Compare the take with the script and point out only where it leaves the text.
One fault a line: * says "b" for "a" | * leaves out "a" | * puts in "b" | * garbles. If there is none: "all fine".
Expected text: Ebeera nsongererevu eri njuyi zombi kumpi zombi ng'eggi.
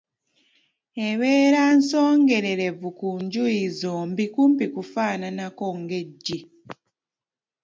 * says "ku" for "eri"
* says "kufaananako" for "zombi"